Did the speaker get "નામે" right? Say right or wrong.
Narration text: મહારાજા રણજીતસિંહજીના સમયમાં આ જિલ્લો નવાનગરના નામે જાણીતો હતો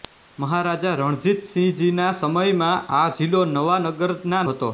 wrong